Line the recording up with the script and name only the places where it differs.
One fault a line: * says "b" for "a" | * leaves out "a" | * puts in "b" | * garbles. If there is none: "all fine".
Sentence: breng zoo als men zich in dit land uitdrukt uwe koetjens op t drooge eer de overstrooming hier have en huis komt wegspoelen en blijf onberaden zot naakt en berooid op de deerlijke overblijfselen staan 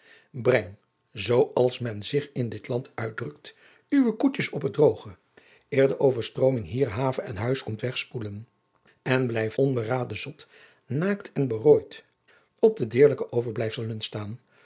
all fine